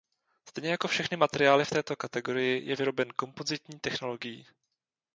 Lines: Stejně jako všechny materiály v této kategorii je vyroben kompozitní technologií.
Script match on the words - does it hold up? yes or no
yes